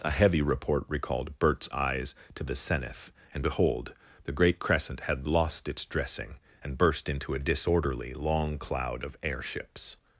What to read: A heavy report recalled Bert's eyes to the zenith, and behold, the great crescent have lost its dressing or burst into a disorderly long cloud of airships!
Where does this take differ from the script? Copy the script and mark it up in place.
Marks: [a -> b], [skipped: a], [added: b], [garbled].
A heavy report recalled Bert's eyes to the zenith, and behold, the great crescent [have -> had] lost its dressing [or -> and] burst into a disorderly long cloud of airships!